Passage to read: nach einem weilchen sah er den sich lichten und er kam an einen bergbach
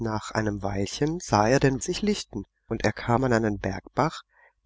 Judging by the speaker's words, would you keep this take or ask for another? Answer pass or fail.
pass